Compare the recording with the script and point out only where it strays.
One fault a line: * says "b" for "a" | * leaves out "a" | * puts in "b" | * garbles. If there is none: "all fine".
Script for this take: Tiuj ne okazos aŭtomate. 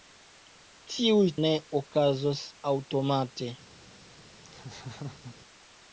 all fine